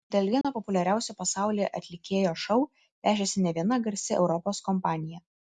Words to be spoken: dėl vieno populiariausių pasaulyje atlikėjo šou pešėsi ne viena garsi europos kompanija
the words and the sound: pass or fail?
fail